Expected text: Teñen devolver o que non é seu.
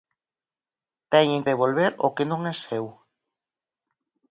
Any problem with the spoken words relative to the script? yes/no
no